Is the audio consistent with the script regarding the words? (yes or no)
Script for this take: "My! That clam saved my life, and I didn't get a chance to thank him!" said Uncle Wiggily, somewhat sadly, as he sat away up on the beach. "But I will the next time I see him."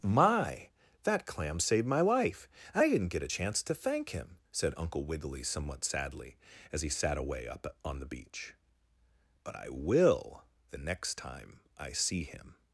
yes